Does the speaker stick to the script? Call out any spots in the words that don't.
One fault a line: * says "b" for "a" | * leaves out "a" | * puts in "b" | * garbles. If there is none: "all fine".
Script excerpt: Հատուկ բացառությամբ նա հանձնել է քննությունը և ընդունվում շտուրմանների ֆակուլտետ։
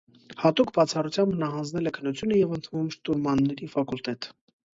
all fine